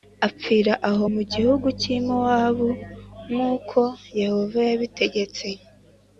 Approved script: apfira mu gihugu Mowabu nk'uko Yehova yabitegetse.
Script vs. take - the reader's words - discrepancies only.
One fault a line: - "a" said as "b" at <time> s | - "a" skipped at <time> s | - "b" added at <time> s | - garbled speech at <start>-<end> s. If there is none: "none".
- "aho" added at 0.9 s
- "cy'i" added at 1.8 s